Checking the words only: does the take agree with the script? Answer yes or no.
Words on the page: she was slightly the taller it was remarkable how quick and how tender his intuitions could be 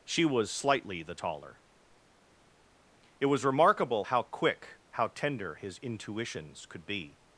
no